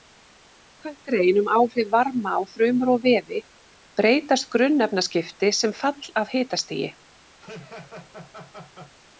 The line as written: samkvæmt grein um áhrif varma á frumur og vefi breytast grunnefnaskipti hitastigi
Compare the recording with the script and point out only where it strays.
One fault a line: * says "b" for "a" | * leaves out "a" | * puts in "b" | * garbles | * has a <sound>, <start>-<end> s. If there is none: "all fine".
* puts in "sem fall af"
* has a laugh, 7.4-9.0 s